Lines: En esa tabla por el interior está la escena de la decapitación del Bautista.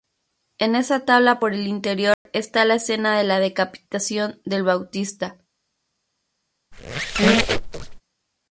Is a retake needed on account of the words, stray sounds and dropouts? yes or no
yes